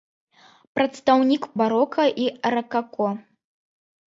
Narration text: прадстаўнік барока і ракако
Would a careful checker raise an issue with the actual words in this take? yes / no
no